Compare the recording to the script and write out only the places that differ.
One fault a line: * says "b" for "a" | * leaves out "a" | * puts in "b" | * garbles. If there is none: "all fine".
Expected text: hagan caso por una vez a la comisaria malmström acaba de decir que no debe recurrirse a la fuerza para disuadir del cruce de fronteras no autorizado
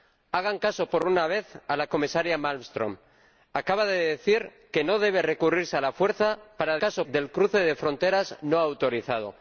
* says "caso" for "disuadir"